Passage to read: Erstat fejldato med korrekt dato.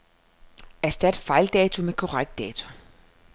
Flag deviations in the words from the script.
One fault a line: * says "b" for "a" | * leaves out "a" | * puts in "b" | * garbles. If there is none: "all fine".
all fine